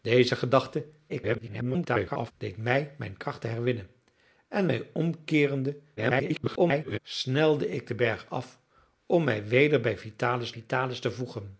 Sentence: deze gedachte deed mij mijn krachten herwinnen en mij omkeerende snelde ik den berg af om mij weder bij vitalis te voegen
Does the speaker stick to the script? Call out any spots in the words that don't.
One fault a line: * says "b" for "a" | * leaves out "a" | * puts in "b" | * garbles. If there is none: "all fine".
* garbles
* garbles
* puts in "vitalis"